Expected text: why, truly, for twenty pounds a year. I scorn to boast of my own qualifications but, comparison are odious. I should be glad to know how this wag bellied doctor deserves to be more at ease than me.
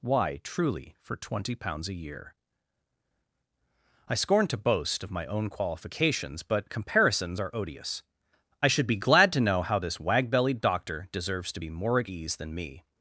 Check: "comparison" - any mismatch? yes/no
yes